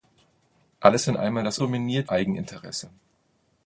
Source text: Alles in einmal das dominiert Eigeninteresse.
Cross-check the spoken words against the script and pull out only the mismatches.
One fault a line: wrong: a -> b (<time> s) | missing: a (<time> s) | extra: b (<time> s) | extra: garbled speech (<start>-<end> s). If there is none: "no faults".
no faults